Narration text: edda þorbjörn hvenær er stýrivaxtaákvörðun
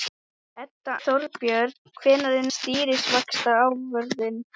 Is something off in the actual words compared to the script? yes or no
no